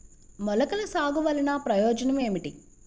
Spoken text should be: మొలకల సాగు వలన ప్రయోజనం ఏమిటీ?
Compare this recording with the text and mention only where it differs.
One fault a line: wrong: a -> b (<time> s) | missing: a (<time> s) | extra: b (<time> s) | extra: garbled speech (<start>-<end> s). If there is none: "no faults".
no faults